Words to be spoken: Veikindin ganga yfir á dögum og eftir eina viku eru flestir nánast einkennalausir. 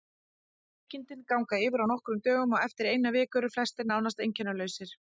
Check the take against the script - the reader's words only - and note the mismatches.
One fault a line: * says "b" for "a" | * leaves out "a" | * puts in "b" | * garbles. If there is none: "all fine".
* puts in "nokkrum"